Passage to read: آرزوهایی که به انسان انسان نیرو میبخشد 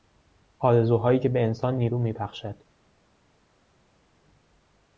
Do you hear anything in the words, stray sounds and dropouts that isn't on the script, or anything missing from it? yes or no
yes